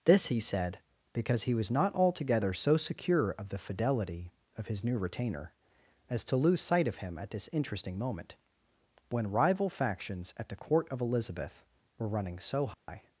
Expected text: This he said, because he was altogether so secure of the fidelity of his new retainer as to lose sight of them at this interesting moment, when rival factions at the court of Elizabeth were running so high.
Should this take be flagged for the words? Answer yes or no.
yes